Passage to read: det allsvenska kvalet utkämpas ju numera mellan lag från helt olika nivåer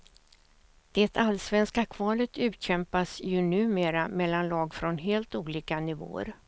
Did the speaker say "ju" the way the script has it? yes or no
yes